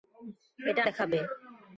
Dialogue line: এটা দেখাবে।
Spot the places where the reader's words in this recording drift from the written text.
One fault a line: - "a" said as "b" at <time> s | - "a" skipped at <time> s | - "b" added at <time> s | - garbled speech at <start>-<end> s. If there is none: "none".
none